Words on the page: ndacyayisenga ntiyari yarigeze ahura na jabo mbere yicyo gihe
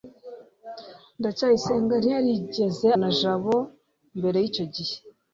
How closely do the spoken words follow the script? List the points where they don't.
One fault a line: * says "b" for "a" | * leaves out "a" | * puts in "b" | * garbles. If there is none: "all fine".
* leaves out "ahura"